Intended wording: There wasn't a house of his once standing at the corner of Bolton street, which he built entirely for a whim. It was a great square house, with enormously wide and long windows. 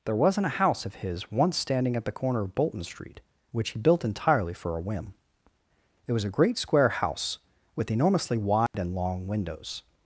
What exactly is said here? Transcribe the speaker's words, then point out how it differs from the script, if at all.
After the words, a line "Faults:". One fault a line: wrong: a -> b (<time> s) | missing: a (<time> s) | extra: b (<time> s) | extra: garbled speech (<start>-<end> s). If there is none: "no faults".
There wasn't a house of his once standing at the corner of Bolton street, which he built entirely for a whim. It was a great square house, with enormously wide and long windows.
Faults:
no faults